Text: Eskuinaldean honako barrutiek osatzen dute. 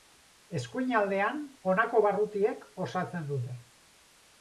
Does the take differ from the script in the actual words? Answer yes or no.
no